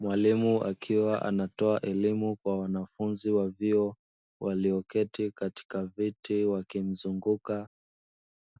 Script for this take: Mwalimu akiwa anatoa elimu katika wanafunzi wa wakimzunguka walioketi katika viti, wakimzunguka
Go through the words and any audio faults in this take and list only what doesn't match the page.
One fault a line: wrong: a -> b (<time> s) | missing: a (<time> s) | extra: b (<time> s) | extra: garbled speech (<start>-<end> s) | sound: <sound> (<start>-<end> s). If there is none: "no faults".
wrong: katika -> kwa (2.4 s)
wrong: wakimzunguka -> vyuo (3.5 s)